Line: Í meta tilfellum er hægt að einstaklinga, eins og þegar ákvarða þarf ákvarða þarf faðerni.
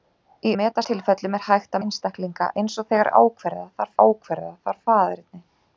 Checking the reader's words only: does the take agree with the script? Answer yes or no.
yes